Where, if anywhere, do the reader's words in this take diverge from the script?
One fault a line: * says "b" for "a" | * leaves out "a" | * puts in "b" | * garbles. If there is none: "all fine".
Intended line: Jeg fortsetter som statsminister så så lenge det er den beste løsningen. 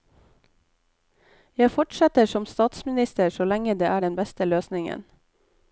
* leaves out "så"